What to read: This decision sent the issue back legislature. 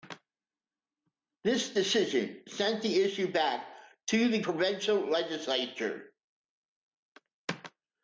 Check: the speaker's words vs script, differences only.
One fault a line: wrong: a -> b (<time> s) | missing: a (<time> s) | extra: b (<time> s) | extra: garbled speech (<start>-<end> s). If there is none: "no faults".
extra: to the provincial (4.1 s)